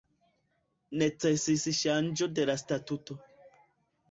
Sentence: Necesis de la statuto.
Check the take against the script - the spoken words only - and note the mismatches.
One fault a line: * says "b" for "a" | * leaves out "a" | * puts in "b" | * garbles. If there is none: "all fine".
* puts in "ŝanĝo"